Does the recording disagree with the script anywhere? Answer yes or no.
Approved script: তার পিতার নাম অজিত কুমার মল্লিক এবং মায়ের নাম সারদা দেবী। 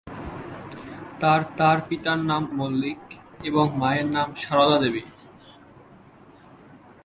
yes